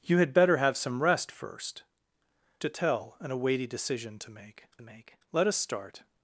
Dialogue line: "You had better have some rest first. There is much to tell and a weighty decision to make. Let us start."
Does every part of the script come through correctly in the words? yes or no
no